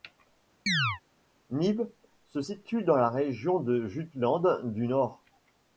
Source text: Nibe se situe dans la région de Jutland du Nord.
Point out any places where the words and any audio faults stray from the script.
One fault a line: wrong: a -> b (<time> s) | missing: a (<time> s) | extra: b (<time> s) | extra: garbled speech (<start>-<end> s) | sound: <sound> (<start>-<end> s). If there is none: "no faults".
sound: chirp (0.7-1.0 s)